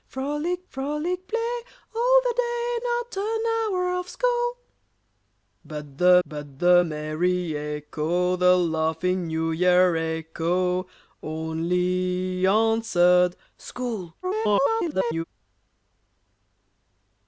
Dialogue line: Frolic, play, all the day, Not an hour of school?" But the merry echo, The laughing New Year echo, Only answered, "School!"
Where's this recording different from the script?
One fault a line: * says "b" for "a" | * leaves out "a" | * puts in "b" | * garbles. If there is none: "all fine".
* puts in "frolic"
* puts in "but the"
* garbles